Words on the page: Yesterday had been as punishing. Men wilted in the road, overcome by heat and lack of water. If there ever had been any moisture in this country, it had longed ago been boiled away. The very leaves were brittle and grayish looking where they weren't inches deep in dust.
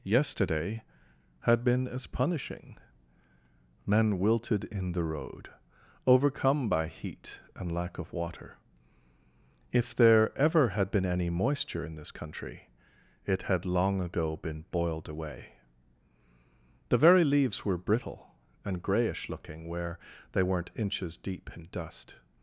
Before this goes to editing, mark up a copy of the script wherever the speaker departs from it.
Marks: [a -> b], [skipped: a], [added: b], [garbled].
Yesterday had been as punishing. Men wilted in the road, overcome by heat and lack of water. If there ever had been any moisture in this country, it had [longed -> long] ago been boiled away. The very leaves were brittle and grayish looking where they weren't inches deep in dust.